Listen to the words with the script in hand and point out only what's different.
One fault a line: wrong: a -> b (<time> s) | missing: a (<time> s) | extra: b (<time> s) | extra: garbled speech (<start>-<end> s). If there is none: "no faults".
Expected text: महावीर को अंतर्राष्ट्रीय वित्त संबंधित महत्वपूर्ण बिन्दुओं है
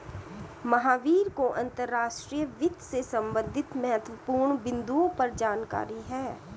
extra: से (2.8 s)
extra: पर जानकारी (5.2 s)